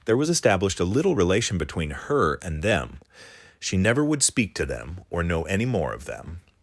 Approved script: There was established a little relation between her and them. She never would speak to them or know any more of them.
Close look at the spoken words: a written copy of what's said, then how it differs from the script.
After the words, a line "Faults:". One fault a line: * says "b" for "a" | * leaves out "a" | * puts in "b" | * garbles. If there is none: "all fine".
There was established a little relation between her and them. She never would speak to them or know any more of them.
Faults:
all fine